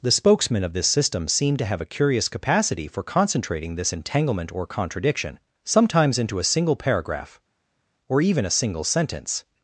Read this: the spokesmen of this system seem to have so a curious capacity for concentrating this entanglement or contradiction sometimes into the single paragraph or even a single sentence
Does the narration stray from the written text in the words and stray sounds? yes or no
yes